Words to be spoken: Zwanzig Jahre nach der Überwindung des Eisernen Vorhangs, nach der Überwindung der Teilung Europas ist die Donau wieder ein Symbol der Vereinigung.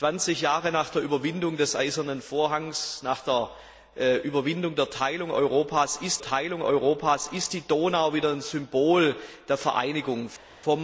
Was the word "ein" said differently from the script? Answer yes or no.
no